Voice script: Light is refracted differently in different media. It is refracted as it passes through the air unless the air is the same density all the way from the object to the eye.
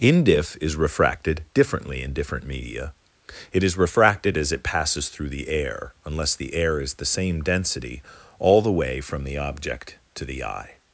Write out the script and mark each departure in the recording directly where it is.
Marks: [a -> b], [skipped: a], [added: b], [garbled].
[Light -> Indif] is refracted differently in different media. It is refracted as it passes through the air unless the air is the same density all the way from the object to the eye.